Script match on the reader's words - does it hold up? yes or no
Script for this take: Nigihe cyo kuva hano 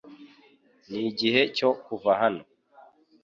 yes